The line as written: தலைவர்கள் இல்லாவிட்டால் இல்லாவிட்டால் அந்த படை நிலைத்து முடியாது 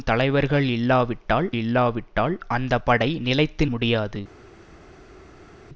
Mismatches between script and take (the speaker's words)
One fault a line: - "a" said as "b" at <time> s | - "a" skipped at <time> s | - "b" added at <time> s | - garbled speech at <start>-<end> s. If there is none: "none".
none